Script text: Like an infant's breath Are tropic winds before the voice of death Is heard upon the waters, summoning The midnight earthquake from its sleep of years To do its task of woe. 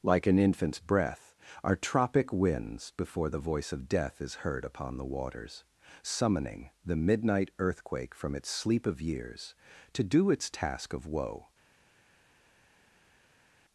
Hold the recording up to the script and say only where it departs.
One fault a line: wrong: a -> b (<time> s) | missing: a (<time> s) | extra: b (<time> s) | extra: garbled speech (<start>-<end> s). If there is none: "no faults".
no faults